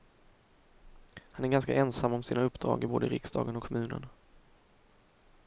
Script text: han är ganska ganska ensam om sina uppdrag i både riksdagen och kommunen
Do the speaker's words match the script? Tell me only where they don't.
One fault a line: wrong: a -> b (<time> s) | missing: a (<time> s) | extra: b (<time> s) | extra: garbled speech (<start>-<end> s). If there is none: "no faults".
missing: ganska (1.7 s)